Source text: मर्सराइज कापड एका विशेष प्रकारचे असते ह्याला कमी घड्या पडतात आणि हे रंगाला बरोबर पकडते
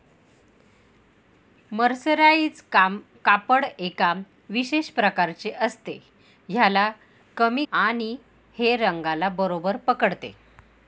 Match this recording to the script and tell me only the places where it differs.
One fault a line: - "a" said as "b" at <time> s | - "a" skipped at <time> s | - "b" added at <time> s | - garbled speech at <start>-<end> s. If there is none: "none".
- "घड्या पडतात" skipped at 7.7 s